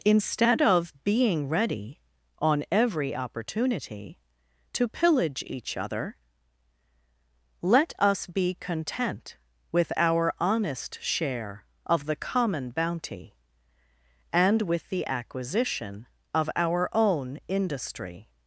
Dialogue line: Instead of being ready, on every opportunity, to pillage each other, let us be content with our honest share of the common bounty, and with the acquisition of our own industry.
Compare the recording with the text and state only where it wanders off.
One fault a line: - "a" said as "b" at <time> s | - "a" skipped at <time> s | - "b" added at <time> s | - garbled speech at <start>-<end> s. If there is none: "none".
none